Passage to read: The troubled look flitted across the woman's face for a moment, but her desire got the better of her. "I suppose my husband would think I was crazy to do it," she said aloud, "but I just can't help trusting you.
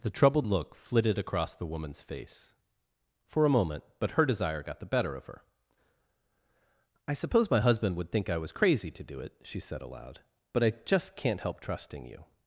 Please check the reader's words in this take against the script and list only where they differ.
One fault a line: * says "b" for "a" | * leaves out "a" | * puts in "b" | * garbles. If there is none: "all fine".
all fine